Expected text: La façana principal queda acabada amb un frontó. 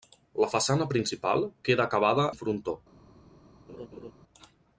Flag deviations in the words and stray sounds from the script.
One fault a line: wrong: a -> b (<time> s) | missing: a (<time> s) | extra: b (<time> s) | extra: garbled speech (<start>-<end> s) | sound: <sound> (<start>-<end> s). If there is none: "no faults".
missing: amb (2.3 s)
sound: laugh (3.7-4.1 s)